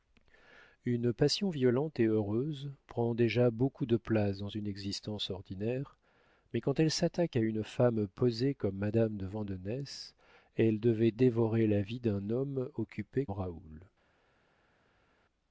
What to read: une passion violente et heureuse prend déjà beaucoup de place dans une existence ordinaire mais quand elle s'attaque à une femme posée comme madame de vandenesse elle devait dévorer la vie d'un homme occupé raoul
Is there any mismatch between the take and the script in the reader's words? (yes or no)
no